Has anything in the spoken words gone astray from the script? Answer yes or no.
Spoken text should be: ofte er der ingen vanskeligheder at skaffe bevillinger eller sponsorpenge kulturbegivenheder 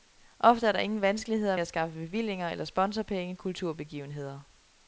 no